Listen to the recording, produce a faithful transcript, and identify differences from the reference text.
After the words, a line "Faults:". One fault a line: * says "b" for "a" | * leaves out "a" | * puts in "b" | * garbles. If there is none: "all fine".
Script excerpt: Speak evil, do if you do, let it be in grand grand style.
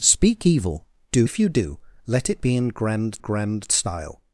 Speak evil, do if you do, let it be in grand grand style.
Faults:
all fine